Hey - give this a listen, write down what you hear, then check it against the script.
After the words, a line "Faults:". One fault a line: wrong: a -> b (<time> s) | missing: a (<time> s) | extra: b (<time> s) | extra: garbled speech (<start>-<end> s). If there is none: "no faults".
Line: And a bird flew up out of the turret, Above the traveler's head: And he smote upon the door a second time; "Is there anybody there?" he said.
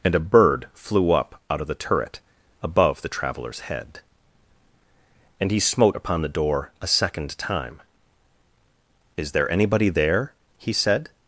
And a bird flew up out of the turret, Above the traveler's head: And he smote upon the door a second time; "Is there anybody there?" he said.
Faults:
no faults